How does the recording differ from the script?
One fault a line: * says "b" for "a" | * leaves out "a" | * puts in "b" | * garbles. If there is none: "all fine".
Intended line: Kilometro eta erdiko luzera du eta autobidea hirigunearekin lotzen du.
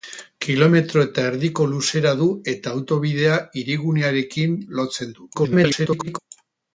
* garbles